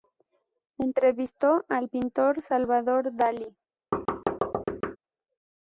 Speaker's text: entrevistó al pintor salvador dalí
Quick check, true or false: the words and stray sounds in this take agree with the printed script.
false